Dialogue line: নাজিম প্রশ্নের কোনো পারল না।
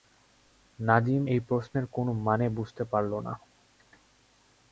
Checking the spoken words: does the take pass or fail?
fail